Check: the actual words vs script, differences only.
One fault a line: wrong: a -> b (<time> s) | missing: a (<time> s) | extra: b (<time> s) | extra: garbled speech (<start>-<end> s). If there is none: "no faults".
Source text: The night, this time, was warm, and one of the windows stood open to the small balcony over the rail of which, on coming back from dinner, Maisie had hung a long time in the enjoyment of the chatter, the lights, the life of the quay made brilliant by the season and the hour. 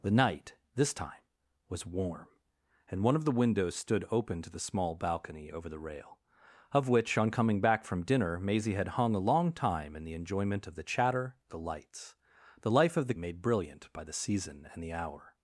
missing: quay (13.1 s)